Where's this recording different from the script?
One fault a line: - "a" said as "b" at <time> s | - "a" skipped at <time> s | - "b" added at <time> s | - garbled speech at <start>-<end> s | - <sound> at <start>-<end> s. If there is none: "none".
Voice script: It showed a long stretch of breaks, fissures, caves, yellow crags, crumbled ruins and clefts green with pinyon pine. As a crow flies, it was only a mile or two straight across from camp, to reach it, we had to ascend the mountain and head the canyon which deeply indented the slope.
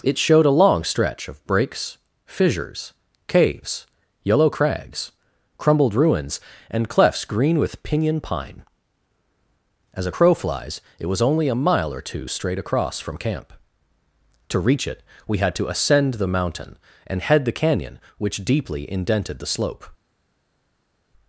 none